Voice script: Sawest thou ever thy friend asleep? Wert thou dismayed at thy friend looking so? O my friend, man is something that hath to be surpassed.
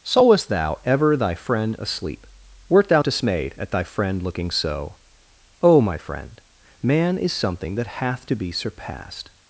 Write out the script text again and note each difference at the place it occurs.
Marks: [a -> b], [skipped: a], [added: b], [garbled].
Sawest thou ever thy friend asleep? Wert thou dismayed at thy friend looking so? O my friend, man is something that hath to be surpassed.